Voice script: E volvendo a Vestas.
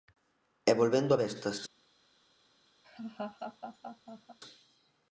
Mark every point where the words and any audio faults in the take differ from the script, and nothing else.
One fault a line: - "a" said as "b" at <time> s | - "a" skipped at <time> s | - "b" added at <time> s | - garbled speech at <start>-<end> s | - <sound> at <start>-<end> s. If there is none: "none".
- laugh at 2.8-4.4 s